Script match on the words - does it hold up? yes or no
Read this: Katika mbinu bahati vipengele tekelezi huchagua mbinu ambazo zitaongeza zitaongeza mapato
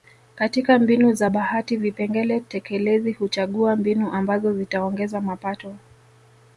no